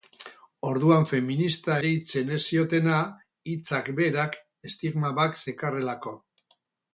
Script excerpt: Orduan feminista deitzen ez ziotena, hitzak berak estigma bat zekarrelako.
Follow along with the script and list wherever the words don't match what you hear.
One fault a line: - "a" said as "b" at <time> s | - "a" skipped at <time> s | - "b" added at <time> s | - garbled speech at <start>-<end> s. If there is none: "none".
none